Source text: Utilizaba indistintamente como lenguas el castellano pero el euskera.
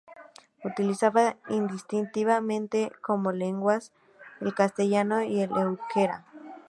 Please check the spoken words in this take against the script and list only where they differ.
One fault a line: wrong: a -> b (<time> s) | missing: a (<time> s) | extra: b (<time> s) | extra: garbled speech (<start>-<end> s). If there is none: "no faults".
wrong: pero -> y (5.2 s)